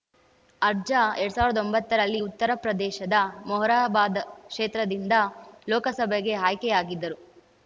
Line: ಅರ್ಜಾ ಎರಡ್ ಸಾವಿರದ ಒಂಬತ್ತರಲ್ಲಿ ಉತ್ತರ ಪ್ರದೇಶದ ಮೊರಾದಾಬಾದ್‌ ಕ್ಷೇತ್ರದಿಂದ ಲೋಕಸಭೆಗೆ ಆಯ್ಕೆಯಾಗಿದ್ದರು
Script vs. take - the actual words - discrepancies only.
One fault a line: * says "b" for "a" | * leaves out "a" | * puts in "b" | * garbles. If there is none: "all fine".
all fine